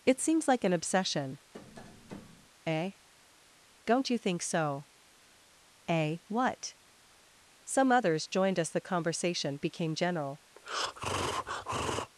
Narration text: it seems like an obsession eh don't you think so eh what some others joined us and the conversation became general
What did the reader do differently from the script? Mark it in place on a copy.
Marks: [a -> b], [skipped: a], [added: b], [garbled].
it seems like an obsession eh don't you think so eh what some others joined us [skipped: and] the conversation became general